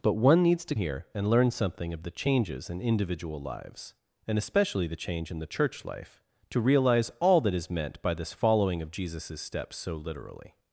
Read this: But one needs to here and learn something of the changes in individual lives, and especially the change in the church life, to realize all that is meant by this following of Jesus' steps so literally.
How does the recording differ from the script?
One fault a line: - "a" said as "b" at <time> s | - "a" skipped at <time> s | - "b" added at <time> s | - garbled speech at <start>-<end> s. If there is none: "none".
none